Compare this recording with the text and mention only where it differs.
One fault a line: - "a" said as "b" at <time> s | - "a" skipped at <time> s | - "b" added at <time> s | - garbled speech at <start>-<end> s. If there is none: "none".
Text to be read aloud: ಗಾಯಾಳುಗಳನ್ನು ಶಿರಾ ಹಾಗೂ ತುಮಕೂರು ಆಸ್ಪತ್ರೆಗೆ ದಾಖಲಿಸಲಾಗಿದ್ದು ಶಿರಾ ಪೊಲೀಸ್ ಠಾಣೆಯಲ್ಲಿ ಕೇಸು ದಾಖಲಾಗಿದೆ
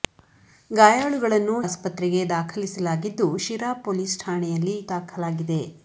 - "ಶಿರಾ ಹಾಗೂ ತುಮಕೂರು" skipped at 1.6 s
- "ಕೇಸು" skipped at 4.8 s